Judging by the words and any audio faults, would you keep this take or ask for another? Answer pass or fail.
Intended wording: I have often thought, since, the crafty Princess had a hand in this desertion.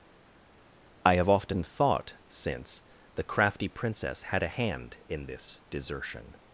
pass